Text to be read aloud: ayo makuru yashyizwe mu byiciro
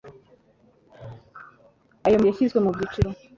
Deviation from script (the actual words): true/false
true